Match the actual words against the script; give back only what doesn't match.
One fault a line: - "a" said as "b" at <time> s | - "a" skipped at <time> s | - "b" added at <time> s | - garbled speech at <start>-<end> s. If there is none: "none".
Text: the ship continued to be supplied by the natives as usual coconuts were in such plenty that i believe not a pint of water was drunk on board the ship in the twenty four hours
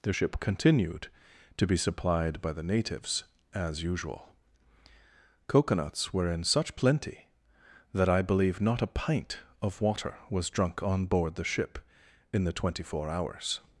none